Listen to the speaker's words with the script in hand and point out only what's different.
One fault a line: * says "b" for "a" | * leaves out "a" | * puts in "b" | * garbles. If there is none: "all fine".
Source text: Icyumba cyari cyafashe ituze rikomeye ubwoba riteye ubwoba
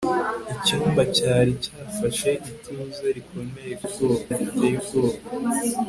all fine